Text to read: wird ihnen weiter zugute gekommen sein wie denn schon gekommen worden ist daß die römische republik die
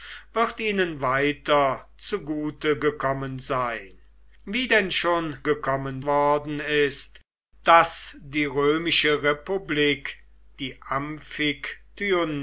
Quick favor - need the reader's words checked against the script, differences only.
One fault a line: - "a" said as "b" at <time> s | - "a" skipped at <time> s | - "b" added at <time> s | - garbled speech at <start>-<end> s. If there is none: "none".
none